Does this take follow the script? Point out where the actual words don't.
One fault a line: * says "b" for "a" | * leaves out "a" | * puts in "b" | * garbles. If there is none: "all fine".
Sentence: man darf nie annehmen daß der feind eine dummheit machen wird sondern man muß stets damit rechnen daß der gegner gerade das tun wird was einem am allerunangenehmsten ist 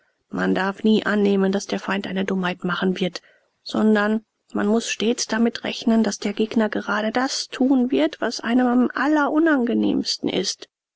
all fine